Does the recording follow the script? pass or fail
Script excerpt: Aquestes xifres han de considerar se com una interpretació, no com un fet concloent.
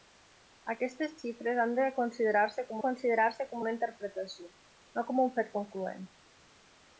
fail